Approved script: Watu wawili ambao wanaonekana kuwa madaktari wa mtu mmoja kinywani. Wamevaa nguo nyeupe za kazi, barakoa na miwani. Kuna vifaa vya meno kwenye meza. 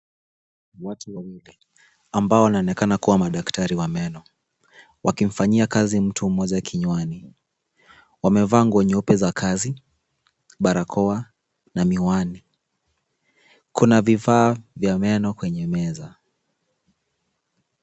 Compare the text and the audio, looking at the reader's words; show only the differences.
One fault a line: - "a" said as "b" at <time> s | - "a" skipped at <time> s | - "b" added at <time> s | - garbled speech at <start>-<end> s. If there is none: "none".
- "meno wakimfanyia kazi" added at 3.9 s